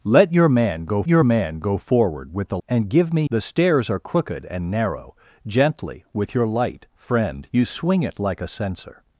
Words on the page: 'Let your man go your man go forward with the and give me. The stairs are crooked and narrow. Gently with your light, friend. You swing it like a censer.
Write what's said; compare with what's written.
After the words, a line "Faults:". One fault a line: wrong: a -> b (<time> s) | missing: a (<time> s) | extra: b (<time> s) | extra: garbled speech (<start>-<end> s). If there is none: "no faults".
'Let your man go your man go forward with the and give me. The stairs are crooked and narrow. Gently with your light, friend. You swing it like a censer.
Faults:
no faults